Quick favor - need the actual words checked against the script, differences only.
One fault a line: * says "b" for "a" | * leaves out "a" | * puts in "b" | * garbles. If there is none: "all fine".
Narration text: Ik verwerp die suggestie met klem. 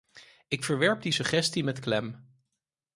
all fine